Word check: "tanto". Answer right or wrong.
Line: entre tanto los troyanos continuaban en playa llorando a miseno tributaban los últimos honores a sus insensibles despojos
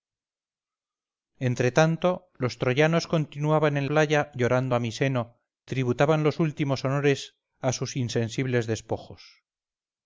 right